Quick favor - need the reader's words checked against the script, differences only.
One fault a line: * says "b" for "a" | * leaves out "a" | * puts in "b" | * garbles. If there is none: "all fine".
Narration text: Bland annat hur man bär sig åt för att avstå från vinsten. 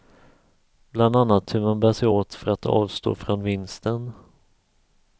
all fine